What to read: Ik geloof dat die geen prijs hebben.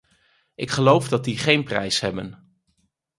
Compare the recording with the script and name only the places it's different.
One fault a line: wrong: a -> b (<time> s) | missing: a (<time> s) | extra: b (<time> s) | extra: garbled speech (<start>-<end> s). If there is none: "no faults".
no faults